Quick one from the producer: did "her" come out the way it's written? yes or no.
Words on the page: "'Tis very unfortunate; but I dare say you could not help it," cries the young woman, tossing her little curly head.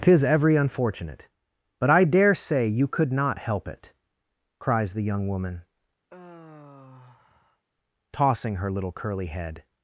yes